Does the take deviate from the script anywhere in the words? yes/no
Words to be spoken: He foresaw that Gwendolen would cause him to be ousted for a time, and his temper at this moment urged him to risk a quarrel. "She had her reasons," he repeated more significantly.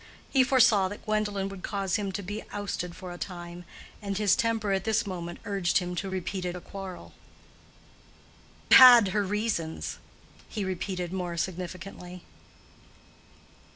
yes